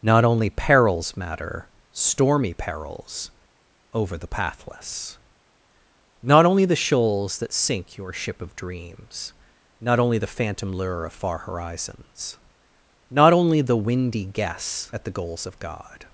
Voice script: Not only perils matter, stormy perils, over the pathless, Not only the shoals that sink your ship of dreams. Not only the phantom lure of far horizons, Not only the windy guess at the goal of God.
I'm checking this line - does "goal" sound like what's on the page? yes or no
no